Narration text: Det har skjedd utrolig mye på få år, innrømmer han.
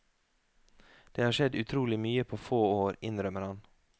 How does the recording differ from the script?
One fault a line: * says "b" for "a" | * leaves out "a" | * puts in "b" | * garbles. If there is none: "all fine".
all fine